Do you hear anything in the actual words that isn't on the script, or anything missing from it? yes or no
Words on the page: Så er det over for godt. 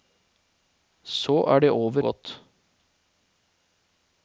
yes